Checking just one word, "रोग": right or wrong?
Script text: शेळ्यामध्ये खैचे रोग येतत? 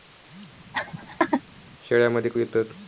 wrong